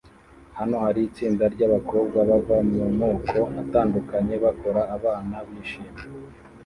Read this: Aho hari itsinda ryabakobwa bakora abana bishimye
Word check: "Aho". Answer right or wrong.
wrong